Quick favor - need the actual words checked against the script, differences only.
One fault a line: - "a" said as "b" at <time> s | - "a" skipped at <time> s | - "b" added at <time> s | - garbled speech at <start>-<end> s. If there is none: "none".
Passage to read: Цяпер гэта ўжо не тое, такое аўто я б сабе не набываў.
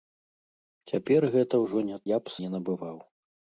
- "тое такое аўто" skipped at 2.0 s
- "сабе" skipped at 2.4 s